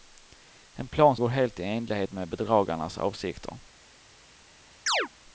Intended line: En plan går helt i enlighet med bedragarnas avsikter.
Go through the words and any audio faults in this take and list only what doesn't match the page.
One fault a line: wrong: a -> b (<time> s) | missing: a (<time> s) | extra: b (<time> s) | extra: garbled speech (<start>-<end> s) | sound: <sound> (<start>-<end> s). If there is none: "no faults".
sound: chirp (4.9-5.1 s)